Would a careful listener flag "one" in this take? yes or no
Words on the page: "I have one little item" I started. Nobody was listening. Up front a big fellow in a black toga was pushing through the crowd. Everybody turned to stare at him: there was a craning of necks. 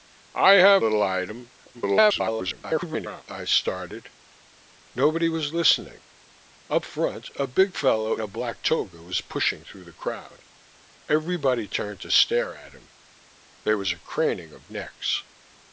yes